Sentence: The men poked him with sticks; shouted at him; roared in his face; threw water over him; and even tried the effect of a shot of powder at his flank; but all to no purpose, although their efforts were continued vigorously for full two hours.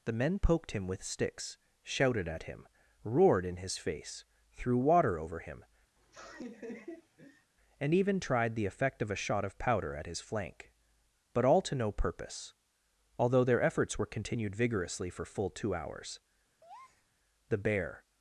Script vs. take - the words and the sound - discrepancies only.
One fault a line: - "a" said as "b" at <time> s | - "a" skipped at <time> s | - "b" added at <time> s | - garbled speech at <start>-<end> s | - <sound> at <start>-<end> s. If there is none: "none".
- laugh at 6.0-7.5 s
- breath at 16.6-17.1 s
- "The bear" added at 17.5 s